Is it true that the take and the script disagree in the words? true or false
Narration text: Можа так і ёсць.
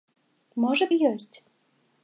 true